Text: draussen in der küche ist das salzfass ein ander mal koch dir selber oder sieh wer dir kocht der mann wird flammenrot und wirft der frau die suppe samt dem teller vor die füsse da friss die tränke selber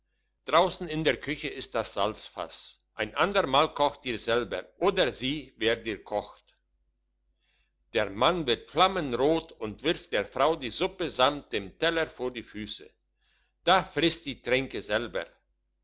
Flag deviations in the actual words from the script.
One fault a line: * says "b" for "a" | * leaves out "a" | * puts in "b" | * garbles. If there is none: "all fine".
all fine